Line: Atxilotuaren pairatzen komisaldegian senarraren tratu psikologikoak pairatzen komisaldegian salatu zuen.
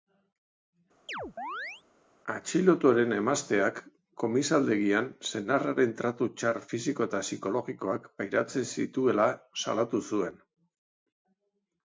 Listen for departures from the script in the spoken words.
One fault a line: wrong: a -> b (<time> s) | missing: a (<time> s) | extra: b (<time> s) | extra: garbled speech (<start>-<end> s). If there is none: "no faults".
wrong: pairatzen -> emazteak (3.2 s)
extra: txar fisiko eta (6.4 s)
wrong: komisaldegian -> zituela (8.7 s)